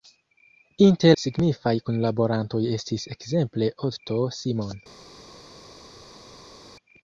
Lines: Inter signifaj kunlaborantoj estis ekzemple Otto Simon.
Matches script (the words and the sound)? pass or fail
pass